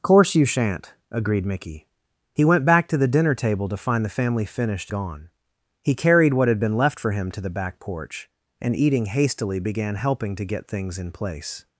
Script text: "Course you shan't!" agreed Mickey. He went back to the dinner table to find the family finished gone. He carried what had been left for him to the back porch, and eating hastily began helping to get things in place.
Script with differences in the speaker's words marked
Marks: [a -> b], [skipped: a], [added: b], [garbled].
"Course you shan't!" agreed Mickey. He went back to the dinner table to find the family finished gone. He carried what had been left for him to the back porch, and eating hastily began helping to get things in place.